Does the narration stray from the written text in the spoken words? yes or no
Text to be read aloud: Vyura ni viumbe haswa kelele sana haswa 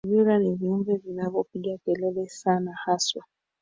yes